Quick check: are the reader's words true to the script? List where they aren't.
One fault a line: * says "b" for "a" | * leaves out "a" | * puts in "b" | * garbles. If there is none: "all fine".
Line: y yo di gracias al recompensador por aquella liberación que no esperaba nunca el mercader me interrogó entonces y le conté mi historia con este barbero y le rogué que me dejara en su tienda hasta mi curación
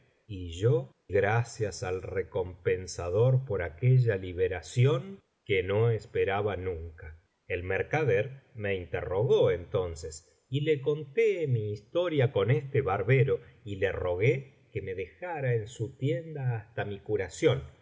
* leaves out "di"